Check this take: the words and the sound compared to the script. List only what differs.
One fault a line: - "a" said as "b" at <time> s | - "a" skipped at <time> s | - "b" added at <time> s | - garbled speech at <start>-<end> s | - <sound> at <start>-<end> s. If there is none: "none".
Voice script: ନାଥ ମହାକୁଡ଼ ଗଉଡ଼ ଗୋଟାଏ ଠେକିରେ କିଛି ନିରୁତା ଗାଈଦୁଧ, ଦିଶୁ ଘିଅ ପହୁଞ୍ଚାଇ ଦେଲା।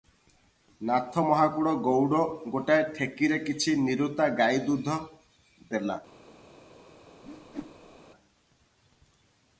- "ଦିଶୁ ଘିଅ ପହୁଞ୍ଚାଇ" skipped at 5.0 s
- whoosh at 7.2-8.0 s